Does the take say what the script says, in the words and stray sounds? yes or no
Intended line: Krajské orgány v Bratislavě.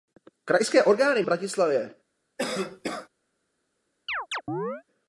no